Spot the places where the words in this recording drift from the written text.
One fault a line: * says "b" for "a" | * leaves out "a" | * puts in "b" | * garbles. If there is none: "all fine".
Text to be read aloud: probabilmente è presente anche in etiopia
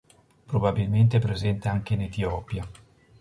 all fine